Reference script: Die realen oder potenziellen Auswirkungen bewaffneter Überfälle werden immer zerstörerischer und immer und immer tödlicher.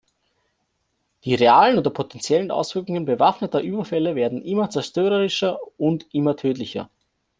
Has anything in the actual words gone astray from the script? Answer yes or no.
yes